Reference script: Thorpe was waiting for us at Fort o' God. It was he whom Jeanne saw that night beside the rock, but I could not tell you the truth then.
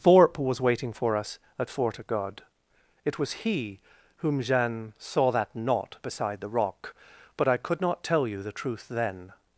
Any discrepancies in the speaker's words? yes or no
yes